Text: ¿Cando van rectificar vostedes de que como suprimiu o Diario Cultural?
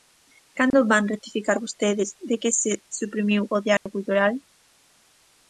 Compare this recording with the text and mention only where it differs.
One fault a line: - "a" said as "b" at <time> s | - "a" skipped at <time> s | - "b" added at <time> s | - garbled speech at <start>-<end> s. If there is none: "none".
- "como" said as "se" at 2.6 s